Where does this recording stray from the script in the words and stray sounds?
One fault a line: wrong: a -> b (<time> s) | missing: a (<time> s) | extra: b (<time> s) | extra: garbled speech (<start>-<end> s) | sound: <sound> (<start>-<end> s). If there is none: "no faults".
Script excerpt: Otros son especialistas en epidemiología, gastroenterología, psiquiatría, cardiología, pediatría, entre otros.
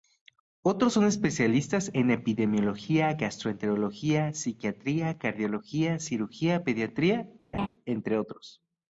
extra: cirugía (6.0 s)
sound: laugh (7.5-7.7 s)